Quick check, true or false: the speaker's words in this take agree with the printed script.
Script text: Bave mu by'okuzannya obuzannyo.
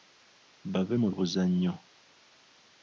false